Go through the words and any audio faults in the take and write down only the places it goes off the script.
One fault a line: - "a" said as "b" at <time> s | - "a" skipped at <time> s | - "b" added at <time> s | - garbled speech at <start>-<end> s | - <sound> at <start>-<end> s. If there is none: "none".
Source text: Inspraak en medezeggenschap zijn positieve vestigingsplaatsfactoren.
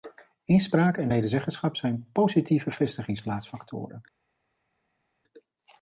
none